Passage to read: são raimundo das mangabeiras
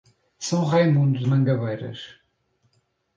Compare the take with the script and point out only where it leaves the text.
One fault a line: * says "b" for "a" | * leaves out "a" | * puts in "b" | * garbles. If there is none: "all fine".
* leaves out "das"